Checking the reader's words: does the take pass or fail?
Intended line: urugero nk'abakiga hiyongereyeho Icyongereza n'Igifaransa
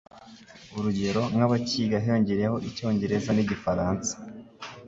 pass